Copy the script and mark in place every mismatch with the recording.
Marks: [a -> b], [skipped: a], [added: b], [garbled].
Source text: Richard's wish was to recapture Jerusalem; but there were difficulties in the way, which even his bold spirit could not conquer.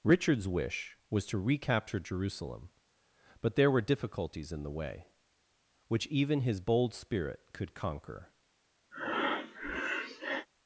Richard's wish was to recapture Jerusalem; but there were difficulties in the way, which even his bold spirit could [skipped: not] conquer.